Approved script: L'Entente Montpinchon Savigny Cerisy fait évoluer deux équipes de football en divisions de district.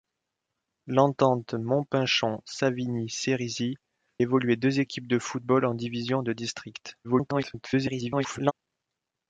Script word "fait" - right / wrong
wrong